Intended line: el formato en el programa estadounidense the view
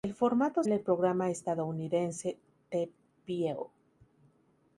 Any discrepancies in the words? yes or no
no